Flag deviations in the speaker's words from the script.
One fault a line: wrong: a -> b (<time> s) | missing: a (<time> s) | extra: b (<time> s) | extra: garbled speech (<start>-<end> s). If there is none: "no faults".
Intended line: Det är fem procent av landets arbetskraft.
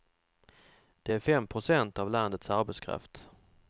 no faults